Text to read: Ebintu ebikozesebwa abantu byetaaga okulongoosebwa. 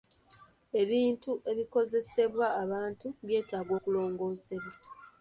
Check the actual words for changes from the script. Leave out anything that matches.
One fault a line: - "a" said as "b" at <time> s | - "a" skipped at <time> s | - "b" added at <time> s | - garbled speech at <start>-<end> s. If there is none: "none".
none